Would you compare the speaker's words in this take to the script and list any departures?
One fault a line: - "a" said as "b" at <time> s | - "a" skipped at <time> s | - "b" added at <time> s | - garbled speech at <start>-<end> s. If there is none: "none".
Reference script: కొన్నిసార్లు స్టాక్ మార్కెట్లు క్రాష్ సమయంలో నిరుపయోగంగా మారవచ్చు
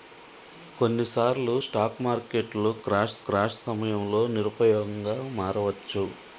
- "క్రాష్" added at 3.3 s